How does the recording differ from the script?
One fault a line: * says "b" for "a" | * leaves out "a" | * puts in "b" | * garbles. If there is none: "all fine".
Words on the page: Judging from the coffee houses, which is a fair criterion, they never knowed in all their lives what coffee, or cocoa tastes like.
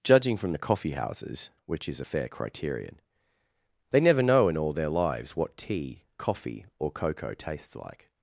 * says "know" for "knowed"
* puts in "tea"